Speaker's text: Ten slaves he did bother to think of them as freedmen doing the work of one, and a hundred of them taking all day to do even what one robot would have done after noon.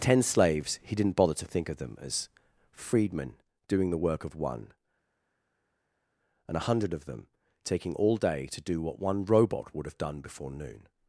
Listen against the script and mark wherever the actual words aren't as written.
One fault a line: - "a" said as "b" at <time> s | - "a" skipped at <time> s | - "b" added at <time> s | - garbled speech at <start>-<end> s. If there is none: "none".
- "did" said as "didn't" at 0.9 s
- "even" skipped at 8.8 s
- "after" said as "before" at 10.2 s